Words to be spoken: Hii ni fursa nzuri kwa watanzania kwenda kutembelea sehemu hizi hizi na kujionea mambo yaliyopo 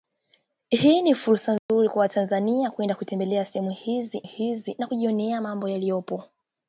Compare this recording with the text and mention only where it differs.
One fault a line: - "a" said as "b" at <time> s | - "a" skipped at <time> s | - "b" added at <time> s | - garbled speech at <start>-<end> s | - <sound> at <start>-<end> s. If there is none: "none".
- dropout at 1.6-1.7 s